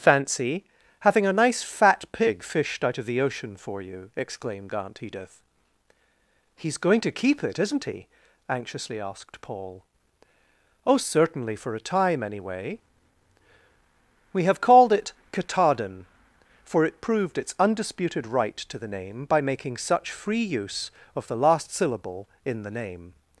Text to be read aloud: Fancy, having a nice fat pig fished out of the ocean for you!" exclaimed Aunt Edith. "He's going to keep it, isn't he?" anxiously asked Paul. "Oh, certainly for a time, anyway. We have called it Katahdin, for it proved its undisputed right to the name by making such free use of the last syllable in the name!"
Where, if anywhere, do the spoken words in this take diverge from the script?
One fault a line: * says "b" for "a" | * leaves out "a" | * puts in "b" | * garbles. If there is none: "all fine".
all fine